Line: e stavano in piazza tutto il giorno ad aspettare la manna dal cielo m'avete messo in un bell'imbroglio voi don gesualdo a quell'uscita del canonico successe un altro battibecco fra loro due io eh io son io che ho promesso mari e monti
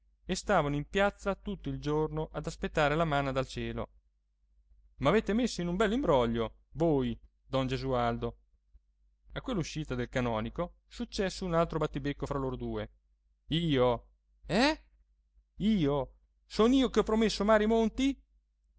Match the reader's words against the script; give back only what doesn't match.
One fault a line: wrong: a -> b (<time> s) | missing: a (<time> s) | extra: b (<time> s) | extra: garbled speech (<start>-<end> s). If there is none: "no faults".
no faults